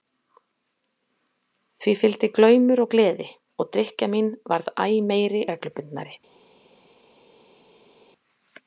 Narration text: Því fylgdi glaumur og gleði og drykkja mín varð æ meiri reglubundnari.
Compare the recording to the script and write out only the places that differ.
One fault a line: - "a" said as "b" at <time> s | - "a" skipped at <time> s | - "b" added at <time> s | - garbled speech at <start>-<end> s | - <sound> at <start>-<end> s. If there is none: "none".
none